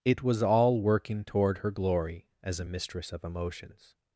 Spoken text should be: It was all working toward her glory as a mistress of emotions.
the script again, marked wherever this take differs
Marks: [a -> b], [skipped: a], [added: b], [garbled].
It was all working toward her glory as a mistress of emotions.